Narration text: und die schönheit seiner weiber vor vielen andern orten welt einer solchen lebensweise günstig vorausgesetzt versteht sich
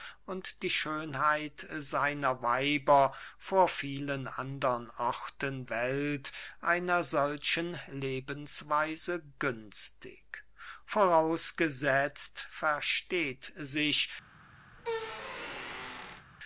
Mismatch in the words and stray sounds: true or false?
true